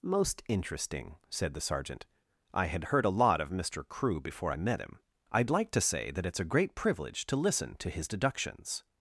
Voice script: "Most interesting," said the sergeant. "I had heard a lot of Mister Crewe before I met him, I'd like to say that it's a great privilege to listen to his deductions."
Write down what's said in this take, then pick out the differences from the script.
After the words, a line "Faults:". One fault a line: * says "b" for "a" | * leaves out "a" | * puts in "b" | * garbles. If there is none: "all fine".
"Most interesting," said the sergeant. "I had heard a lot of Mister Crewe before I met him, I'd like to say that it's a great privilege to listen to his deductions."
Faults:
all fine